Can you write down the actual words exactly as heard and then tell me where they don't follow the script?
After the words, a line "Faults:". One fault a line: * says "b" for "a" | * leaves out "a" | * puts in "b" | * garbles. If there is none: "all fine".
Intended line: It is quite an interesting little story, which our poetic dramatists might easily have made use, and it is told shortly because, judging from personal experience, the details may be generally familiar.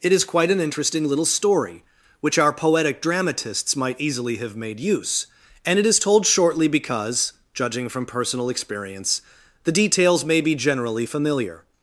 It is quite an interesting little story, which our poetic dramatists might easily have made use, and it is told shortly because, judging from personal experience, the details may be generally familiar.
Faults:
all fine